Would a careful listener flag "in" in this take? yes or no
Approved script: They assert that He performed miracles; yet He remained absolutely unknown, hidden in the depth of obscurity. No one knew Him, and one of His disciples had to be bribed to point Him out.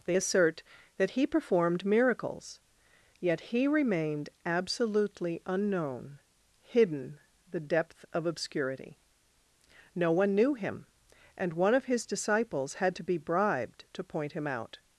yes